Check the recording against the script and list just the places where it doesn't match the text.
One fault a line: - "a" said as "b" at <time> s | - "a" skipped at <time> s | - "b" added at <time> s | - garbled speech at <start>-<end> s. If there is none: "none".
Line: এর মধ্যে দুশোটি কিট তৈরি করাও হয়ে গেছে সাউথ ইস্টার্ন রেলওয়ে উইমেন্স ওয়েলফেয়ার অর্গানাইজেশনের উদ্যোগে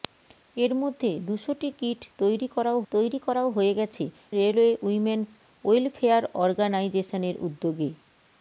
- "তৈরি করাও" added at 2.9 s
- "সাউথ ইস্টার্ন" skipped at 4.0 s